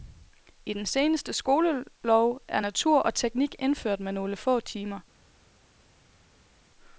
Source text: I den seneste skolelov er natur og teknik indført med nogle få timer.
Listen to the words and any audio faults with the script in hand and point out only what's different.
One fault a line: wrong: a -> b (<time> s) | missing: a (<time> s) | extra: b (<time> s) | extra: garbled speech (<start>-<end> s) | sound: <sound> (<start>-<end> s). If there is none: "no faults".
no faults